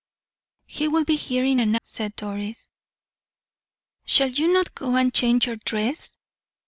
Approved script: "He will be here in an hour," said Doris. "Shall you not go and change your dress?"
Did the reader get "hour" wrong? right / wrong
wrong